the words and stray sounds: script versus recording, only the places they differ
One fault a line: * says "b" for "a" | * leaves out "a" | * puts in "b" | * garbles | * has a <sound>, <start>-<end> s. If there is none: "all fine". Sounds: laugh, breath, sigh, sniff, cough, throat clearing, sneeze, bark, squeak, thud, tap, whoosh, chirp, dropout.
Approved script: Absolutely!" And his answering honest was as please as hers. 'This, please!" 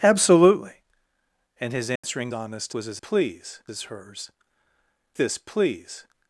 * has a dropout, 2.0-2.0 s